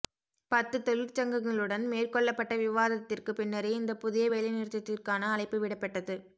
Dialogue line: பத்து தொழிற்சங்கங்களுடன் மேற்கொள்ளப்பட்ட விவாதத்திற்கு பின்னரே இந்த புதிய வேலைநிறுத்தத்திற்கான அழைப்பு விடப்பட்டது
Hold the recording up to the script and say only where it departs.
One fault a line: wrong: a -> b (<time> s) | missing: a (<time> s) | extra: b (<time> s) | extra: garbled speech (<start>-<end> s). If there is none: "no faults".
no faults